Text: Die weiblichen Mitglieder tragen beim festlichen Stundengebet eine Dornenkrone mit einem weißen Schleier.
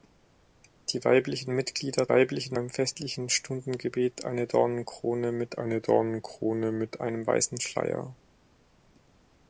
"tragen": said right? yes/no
no